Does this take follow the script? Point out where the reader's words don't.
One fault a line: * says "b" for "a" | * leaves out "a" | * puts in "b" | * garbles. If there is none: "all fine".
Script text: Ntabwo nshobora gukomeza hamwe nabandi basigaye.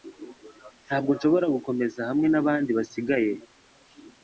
all fine